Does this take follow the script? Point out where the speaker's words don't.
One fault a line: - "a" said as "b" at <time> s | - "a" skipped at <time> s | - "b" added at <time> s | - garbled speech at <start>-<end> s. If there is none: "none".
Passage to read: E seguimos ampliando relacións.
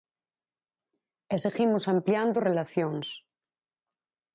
none